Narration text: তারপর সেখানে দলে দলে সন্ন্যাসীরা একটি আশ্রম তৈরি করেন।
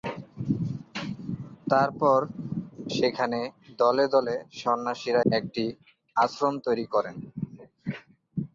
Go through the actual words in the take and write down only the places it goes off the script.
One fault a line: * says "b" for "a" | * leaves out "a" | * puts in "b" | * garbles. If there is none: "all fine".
all fine